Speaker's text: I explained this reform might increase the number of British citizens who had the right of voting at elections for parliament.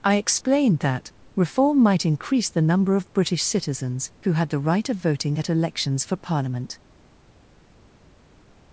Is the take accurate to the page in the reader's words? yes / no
no